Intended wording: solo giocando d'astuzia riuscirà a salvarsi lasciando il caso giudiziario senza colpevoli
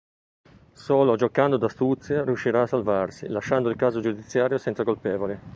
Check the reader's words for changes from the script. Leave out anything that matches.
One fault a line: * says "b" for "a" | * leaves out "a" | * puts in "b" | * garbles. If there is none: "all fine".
all fine